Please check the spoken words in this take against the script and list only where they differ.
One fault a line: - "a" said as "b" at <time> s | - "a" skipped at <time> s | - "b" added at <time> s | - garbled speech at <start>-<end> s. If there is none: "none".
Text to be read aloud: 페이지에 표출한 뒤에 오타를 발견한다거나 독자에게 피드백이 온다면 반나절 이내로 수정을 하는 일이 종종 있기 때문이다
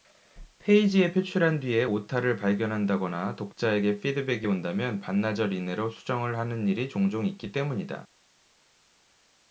none